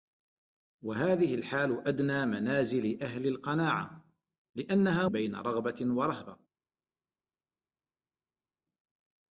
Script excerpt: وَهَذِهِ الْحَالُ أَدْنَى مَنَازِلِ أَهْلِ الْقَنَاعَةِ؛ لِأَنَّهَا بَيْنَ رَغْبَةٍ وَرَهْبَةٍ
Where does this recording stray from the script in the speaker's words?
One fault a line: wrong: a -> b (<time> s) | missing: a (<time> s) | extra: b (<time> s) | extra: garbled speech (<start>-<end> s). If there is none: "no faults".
no faults